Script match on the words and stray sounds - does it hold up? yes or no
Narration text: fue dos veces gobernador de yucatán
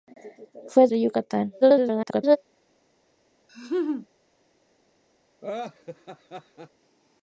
no